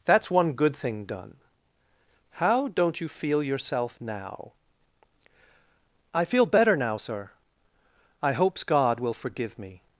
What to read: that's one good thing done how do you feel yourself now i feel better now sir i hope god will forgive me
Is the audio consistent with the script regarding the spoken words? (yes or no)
no